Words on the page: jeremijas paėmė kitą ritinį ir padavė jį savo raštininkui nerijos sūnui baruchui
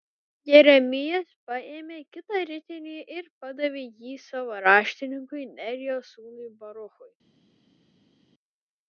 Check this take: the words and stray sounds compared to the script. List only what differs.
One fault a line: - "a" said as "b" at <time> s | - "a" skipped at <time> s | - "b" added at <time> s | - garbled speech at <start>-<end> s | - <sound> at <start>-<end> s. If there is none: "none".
none